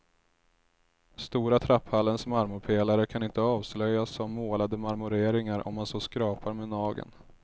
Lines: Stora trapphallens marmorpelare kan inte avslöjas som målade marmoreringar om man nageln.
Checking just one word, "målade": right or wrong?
right